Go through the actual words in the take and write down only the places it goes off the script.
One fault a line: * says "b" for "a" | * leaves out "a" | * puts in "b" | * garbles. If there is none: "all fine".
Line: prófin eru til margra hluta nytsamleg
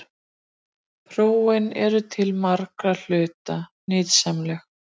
all fine